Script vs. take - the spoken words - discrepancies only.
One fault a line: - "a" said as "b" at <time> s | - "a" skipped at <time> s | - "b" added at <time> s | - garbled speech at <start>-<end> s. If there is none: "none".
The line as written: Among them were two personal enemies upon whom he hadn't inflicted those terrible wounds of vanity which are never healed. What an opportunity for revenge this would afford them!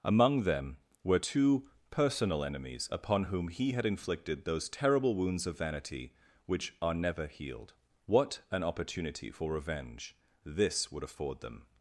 - "hadn't" said as "had" at 3.7 s